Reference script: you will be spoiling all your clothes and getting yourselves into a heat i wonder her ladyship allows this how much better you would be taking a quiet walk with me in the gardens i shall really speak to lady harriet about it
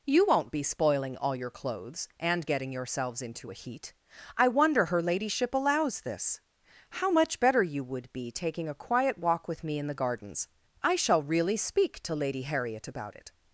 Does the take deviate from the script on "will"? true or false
true